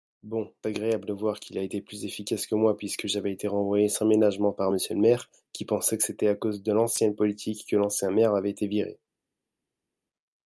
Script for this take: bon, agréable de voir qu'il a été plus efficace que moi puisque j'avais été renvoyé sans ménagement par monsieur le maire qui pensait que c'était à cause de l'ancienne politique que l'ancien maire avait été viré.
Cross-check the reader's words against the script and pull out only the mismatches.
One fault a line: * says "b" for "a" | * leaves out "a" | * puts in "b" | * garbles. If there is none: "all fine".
all fine